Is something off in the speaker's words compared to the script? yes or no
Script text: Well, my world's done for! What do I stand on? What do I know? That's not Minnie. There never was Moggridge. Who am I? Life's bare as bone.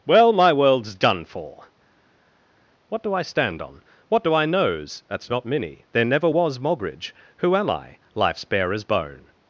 yes